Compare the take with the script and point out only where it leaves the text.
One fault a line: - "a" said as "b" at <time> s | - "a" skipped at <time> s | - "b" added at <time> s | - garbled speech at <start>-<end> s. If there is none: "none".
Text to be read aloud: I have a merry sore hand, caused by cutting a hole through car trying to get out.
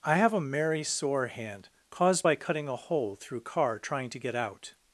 none